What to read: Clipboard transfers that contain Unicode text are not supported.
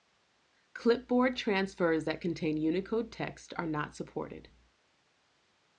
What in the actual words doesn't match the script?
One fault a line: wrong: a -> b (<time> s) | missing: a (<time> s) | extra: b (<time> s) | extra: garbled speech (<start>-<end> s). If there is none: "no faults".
no faults